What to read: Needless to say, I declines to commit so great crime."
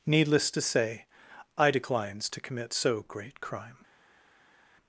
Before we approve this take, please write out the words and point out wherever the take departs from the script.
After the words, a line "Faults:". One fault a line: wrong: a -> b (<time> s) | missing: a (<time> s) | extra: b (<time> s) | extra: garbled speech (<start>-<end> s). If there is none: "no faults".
Needless to say, I declines to commit so great crime."
Faults:
no faults